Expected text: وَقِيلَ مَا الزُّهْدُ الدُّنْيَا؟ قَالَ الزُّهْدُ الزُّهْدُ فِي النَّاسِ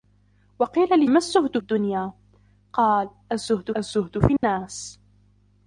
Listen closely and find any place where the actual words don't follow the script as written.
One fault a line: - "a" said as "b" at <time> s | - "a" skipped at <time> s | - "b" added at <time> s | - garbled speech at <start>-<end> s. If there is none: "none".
none